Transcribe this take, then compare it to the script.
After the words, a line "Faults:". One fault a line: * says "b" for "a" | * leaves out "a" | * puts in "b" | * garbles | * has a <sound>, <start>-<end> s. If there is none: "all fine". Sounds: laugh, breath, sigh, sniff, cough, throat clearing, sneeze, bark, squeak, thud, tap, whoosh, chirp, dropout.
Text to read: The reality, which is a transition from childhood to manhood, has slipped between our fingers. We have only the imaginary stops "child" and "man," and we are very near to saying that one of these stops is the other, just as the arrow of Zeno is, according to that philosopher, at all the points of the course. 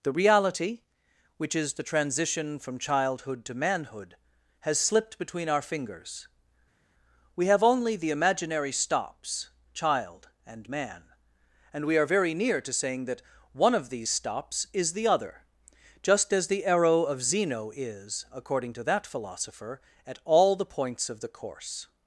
The reality, which is the transition from childhood to manhood, has slipped between our fingers. We have only the imaginary stops "child" and "man," and we are very near to saying that one of these stops is the other, just as the arrow of Zeno is, according to that philosopher, at all the points of the course.
Faults:
* says "the" for "a"